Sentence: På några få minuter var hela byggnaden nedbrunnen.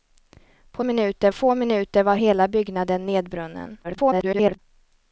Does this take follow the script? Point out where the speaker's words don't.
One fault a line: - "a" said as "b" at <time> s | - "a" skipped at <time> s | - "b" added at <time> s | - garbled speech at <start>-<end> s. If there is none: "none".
- "några" said as "minuter" at 0.8 s
- garbled speech at 3.8-4.6 s